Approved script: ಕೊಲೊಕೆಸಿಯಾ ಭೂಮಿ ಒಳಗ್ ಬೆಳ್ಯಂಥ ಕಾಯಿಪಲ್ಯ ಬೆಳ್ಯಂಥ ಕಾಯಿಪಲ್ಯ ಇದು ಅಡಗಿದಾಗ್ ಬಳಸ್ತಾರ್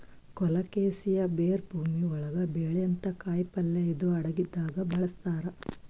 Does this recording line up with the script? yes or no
no